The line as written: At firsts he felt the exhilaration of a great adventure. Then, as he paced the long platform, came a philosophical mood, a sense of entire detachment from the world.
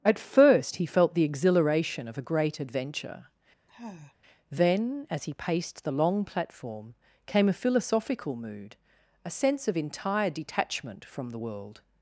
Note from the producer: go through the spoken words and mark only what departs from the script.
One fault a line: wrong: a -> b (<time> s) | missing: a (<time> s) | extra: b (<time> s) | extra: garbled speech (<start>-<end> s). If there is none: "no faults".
wrong: firsts -> first (0.2 s)